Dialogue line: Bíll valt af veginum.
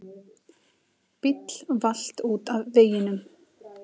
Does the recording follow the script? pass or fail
fail